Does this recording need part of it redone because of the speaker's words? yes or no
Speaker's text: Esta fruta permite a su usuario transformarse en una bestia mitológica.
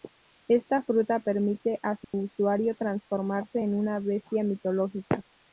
no